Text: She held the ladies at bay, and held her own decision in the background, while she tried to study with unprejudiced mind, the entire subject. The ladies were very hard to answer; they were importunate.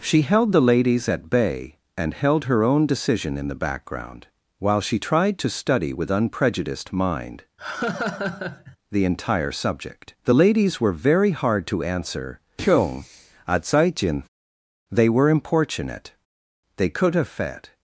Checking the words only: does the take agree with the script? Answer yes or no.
no